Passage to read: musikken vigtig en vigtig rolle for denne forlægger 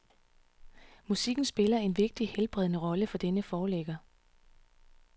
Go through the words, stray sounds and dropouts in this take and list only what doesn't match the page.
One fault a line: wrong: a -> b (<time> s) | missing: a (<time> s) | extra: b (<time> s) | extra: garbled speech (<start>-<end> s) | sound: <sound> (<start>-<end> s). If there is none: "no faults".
wrong: vigtig -> spiller (1.4 s)
extra: helbredende (2.3 s)